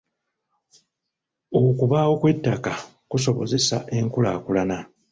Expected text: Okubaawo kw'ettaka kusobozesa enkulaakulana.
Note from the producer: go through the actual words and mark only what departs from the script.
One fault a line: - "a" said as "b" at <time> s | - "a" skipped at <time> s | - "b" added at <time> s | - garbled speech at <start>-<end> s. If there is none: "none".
none